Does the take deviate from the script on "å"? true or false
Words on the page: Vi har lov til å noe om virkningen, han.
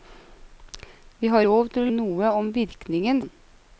false